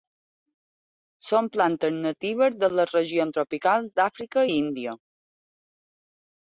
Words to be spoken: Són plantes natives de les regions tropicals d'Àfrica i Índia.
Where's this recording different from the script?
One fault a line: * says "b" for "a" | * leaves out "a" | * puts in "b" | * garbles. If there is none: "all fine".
all fine